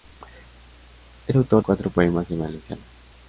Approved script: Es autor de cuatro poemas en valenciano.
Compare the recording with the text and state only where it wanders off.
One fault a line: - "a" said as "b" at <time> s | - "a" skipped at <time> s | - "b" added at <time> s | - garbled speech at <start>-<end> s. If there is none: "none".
- "de" skipped at 1.6 s